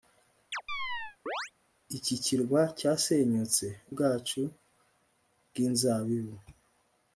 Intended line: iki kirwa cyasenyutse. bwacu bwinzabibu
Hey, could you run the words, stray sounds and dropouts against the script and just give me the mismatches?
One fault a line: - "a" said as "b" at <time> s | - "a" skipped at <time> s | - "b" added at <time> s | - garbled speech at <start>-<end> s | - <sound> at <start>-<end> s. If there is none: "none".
- chirp at 0.5-1.5 s